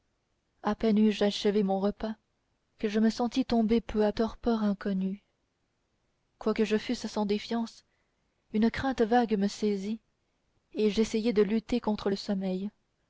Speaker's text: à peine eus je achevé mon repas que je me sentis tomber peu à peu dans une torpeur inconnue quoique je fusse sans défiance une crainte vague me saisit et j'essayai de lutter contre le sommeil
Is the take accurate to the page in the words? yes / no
no